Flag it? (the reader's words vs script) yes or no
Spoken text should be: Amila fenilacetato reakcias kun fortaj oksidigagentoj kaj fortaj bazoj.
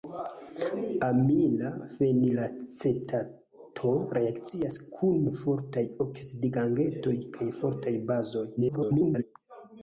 yes